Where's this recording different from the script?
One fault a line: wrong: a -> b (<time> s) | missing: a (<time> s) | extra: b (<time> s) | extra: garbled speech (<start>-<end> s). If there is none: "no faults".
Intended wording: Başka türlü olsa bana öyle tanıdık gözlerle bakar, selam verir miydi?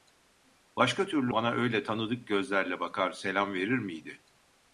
missing: olsa (1.3 s)